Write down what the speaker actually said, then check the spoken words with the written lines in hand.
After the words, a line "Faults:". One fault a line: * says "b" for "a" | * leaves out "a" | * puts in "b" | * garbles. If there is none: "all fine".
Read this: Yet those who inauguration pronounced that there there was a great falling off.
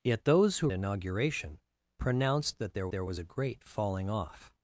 Yet those who inauguration pronounced that there there was a great falling off.
Faults:
all fine